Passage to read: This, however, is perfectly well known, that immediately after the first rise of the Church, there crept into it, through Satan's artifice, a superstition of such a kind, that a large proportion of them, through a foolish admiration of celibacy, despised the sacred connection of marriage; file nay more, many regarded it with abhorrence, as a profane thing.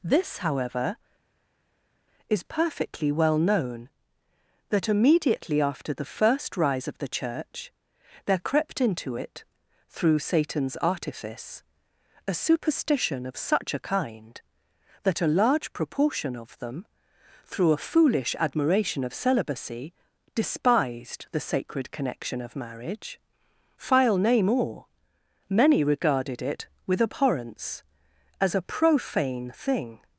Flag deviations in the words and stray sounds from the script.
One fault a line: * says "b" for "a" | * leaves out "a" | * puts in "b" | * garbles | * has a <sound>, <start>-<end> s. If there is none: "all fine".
all fine